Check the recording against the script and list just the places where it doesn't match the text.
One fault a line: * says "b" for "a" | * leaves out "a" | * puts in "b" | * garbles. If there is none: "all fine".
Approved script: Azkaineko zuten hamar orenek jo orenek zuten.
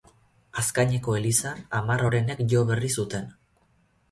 * says "elizan" for "zuten"
* says "berri" for "orenek"